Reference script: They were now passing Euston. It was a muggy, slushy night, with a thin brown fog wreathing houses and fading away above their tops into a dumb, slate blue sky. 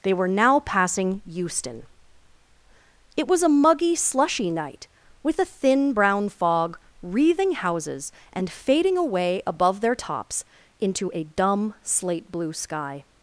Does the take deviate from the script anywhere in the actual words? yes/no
no